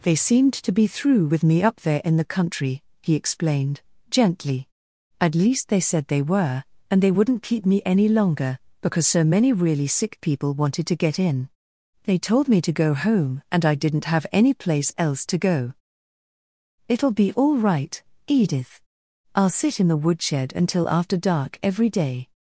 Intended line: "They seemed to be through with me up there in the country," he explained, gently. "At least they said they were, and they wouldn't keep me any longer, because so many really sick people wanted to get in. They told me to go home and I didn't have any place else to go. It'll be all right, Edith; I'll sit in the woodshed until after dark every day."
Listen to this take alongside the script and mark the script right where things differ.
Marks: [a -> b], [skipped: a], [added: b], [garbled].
"They seemed to be through with me up there in the country," he explained, gently. "At least they said they were, and they wouldn't keep me any longer, because so many really sick people wanted to get in. They told me to go home and I didn't have any place else to go. It'll be all right, Edith; I'll sit in the woodshed until after dark every day."